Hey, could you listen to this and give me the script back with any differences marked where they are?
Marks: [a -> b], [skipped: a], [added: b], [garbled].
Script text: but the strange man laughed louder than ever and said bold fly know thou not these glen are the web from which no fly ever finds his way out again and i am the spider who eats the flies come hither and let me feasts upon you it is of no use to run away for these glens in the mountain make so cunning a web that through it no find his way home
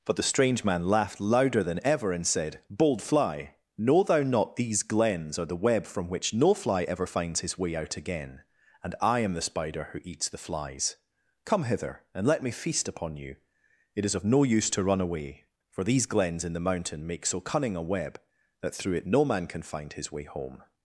but the strange man laughed louder than ever and said bold fly know thou not these [glen -> glens] are the web from which no fly ever finds his way out again and i am the spider who eats the flies come hither and let me [feasts -> feast] upon you it is of no use to run away for these glens in the mountain make so cunning a web that through it no [added: man can] find his way home